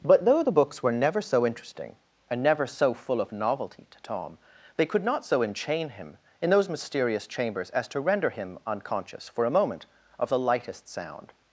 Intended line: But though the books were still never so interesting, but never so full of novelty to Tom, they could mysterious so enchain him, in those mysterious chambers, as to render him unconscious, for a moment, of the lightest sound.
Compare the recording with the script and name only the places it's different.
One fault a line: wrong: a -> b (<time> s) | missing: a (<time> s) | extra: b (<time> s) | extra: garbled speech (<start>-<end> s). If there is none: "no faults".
missing: still (0.9 s)
wrong: but -> and (2.3 s)
wrong: mysterious -> not (5.0 s)